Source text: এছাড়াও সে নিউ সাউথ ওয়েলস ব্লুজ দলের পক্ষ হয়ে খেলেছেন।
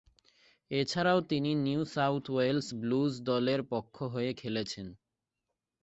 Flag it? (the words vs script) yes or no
yes